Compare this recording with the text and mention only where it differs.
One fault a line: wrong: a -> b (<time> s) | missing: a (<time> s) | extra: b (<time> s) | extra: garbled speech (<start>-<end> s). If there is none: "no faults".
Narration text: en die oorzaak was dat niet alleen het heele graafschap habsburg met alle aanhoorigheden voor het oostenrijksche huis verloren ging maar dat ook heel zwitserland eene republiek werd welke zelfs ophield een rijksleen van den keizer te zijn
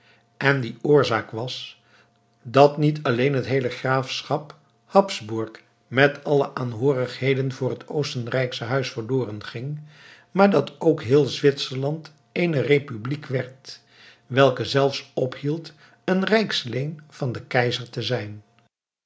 no faults